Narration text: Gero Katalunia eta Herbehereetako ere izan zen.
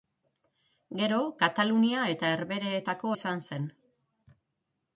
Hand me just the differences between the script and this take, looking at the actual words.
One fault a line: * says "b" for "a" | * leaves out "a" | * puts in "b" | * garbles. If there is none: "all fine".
* leaves out "ere"